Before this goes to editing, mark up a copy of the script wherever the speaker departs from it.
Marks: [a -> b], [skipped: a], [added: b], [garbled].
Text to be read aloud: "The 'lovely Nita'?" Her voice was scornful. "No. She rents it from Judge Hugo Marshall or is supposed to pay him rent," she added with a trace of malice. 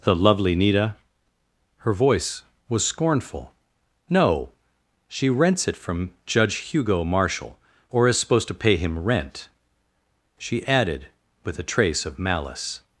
"The 'lovely Nita'?" Her voice was scornful. "No. She rents it from Judge Hugo Marshall or is supposed to pay him rent," she added with a trace of malice.